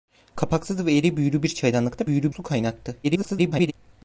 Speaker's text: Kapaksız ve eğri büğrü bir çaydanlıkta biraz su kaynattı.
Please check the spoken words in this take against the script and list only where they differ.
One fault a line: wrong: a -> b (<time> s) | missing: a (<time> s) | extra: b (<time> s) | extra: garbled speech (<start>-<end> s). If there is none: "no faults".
wrong: biraz -> büğrü (2.1 s)
extra: garbled speech (3.0-3.7 s)